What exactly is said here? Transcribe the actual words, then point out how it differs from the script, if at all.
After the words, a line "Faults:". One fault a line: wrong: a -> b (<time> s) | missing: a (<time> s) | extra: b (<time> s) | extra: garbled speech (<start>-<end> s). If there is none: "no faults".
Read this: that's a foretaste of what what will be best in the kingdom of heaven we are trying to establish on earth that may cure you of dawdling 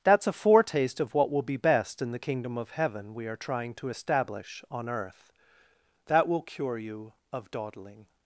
that's a foretaste of what will be best in the kingdom of heaven we are trying to establish on earth that will cure you of dawdling
Faults:
missing: what (1.3 s)
wrong: may -> will (6.3 s)